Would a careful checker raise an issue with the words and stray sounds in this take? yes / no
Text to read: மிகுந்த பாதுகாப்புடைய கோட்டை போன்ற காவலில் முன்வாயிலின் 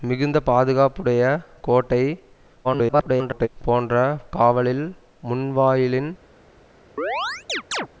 yes